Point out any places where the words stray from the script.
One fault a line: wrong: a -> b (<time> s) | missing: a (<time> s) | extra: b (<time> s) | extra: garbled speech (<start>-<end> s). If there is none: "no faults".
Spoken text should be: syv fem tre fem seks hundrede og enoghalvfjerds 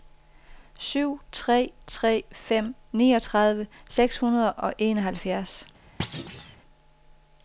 wrong: fem -> tre (1.3 s)
extra: niogtredive (2.9 s)